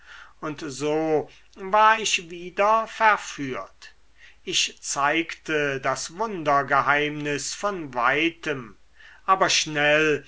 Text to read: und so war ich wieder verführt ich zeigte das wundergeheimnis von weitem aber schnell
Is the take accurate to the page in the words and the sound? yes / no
yes